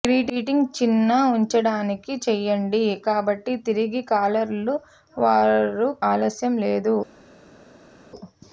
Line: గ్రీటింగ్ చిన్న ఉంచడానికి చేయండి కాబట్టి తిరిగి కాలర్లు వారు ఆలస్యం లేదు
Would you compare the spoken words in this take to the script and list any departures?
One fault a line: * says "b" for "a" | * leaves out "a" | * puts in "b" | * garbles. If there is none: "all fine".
all fine